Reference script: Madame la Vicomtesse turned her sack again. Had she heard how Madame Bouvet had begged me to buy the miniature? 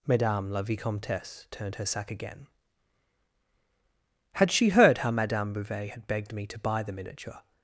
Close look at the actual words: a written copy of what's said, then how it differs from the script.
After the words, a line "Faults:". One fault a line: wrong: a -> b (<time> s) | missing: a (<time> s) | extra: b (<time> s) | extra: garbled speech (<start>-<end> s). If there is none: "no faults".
Madame la Vicomtesse turned her sack again. Had she heard how Madame Bouvet had begged me to buy the miniature?
Faults:
no faults